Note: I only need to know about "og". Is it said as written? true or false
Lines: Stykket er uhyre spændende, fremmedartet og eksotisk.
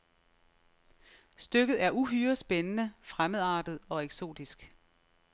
true